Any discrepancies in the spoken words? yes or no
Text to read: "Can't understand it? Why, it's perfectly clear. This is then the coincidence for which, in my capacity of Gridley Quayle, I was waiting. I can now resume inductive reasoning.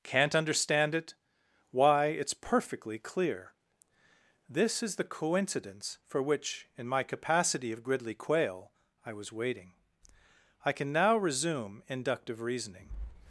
yes